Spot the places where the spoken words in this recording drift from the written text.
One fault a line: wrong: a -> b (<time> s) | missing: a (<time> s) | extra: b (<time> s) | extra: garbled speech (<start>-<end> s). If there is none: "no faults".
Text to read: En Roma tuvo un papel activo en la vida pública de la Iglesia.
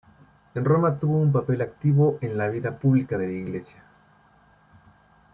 no faults